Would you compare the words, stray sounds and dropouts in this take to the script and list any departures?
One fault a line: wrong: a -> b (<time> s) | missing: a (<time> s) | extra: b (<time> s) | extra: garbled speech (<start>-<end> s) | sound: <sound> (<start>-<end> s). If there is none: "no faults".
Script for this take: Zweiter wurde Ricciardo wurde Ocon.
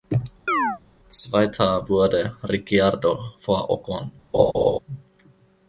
sound: chirp (0.5-0.8 s)
wrong: wurde -> vor (3.4 s)
sound: laugh (4.3-4.8 s)